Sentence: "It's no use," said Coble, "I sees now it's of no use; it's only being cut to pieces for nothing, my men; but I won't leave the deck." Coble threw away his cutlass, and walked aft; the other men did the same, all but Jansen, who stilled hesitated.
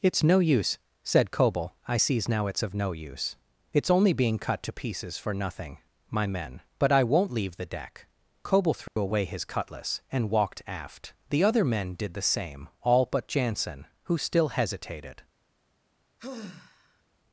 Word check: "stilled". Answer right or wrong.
wrong